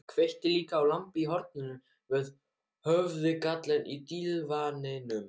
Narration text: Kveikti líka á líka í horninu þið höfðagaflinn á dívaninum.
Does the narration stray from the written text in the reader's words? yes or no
yes